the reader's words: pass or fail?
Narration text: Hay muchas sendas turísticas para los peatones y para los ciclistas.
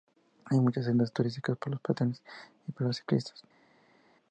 pass